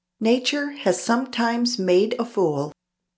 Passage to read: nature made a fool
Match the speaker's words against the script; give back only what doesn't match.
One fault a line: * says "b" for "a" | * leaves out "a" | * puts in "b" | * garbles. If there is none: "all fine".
* puts in "has sometimes"